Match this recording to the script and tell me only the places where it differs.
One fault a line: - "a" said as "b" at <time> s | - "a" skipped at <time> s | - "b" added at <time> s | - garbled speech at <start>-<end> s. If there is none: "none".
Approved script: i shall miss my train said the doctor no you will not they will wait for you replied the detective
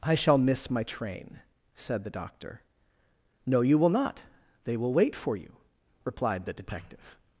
none